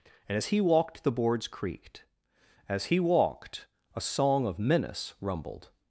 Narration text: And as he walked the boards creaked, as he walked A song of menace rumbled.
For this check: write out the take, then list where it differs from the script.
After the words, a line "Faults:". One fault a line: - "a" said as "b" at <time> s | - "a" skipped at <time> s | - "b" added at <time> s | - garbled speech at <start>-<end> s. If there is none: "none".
And as he walked the boards creaked, as he walked A song of menace rumbled.
Faults:
none